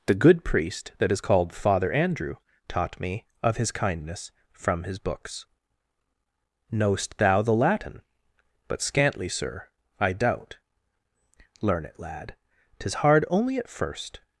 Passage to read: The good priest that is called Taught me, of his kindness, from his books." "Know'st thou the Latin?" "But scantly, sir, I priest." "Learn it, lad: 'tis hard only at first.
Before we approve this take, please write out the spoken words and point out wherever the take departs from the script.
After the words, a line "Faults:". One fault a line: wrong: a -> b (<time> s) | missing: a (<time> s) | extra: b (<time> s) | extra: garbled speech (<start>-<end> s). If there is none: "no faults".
The good priest that is called Father Andrew taught me, of his kindness, from his books." "Know'st thou the Latin?" "But scantly, sir, I doubt." "Learn it, lad: 'tis hard only at first.
Faults:
extra: Father Andrew (1.5 s)
wrong: priest -> doubt (10.1 s)